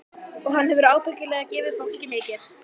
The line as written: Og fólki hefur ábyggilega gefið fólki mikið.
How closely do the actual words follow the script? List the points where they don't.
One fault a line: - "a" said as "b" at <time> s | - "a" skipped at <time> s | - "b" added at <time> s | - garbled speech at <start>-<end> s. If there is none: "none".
- "fólki" said as "hann" at 0.6 s